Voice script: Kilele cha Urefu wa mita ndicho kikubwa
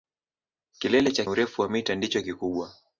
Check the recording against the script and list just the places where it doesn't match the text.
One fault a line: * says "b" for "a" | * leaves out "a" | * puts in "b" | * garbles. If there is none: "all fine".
all fine